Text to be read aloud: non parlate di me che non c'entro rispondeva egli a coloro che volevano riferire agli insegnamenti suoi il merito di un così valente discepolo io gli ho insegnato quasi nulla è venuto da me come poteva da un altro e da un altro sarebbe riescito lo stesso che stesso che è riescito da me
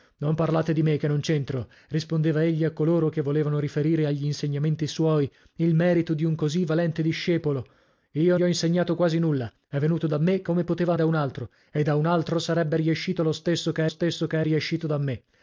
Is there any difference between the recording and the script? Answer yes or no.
no